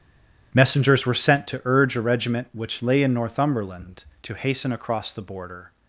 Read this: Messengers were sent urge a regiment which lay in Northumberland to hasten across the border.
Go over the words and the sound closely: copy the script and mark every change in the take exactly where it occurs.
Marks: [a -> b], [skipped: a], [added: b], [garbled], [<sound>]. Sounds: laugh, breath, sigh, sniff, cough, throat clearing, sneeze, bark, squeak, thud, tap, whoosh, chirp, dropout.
Messengers were sent [added: to] urge a regiment which lay in Northumberland to hasten across the border.